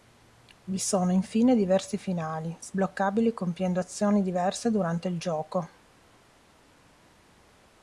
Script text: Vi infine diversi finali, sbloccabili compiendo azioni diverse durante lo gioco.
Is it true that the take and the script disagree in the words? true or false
true